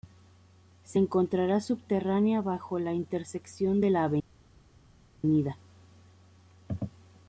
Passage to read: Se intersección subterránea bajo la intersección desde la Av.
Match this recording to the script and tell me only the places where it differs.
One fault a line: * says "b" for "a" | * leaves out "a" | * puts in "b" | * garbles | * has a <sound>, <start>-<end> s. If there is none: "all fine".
* says "encontrará" for "intersección"
* says "de" for "desde"